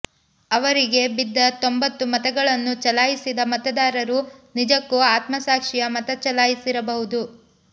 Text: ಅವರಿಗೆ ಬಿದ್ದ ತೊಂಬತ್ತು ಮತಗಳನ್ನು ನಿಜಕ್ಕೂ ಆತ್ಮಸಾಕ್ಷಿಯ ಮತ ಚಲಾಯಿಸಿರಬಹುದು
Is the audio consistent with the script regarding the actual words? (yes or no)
no